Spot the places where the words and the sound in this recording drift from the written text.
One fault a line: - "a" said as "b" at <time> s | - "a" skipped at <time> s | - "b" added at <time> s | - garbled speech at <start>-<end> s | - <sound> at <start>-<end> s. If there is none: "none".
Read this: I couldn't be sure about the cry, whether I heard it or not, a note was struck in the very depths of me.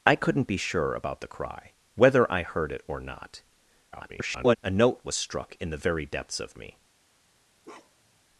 - garbled speech at 3.9-4.6 s
- bark at 7.6-8.2 s